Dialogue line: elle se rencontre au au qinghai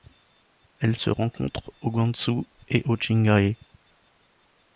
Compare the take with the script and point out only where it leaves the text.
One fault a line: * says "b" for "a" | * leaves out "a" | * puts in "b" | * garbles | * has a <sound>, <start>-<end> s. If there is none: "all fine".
* puts in "gansu et"